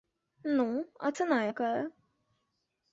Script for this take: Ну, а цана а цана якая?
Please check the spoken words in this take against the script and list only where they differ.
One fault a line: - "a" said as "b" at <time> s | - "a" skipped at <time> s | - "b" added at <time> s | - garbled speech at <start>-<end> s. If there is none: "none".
- "а цана" skipped at 1.4 s